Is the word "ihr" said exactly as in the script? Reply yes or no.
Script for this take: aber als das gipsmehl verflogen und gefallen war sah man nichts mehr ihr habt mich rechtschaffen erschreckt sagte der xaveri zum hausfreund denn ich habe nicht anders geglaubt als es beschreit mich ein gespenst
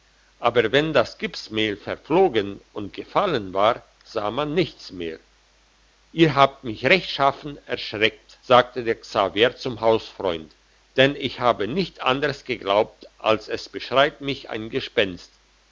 yes